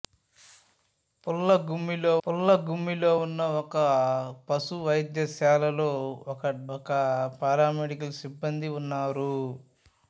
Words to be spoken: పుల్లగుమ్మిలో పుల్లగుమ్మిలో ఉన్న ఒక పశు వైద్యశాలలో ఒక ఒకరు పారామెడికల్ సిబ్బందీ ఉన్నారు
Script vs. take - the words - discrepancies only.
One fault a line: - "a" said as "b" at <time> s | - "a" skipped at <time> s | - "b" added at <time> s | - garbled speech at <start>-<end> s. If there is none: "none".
none